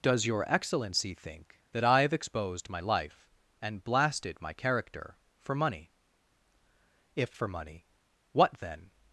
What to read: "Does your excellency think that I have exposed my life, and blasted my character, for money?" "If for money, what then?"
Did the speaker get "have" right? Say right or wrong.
right